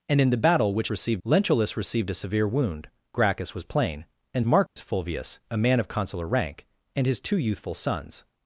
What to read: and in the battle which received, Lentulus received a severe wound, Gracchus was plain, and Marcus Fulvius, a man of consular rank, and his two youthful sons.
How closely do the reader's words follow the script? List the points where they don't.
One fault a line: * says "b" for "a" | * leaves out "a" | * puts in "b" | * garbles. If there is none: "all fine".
all fine